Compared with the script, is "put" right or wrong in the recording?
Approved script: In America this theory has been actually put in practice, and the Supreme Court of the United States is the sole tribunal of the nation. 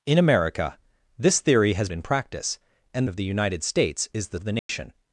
wrong